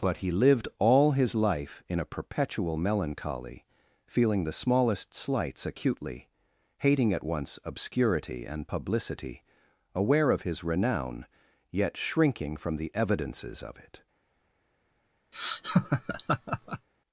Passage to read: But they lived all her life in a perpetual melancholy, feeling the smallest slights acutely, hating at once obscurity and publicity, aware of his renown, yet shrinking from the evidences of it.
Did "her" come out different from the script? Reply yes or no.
yes